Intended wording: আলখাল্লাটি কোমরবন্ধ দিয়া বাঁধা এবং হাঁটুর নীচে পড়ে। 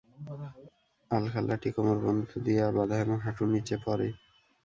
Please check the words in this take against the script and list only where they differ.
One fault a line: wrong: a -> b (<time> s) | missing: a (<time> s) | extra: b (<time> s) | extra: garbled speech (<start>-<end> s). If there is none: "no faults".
no faults